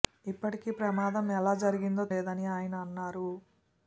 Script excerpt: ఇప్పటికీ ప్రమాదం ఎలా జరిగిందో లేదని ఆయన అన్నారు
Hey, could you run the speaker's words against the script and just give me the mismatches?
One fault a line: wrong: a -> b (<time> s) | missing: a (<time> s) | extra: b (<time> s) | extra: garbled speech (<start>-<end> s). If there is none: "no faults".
no faults